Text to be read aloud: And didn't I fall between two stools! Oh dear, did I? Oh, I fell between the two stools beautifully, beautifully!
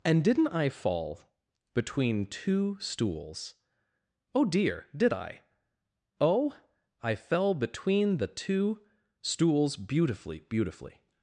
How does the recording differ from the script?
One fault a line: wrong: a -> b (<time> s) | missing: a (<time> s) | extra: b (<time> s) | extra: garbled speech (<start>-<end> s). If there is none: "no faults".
no faults